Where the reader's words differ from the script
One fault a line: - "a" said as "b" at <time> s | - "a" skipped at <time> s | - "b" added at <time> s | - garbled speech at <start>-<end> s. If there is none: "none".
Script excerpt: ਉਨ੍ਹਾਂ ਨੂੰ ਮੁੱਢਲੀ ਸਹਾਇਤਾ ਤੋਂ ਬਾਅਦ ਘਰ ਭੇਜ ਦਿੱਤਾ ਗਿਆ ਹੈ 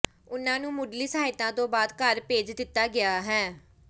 none